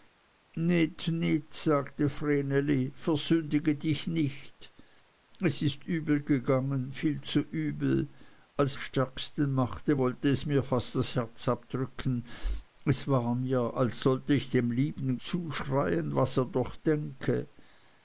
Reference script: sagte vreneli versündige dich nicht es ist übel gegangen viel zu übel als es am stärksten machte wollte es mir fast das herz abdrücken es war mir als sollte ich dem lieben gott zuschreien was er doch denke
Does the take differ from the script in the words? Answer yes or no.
yes